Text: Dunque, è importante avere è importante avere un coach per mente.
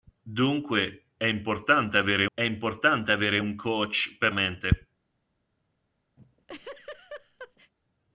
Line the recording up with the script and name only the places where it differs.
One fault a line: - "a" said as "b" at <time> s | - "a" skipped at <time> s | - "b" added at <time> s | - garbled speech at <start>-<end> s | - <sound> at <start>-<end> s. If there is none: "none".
- laugh at 6.2-7.7 s